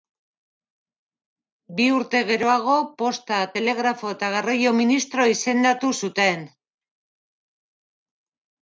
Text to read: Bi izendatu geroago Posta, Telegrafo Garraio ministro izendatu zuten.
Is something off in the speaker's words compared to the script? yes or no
yes